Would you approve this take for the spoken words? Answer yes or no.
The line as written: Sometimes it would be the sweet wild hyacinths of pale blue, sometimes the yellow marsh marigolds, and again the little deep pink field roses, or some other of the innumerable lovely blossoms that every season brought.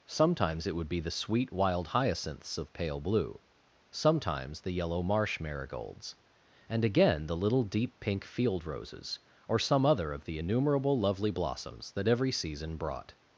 yes